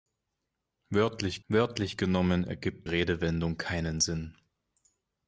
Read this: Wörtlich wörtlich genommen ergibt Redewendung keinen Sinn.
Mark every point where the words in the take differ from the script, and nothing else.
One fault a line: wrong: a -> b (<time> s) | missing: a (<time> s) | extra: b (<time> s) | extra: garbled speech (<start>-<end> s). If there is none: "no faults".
no faults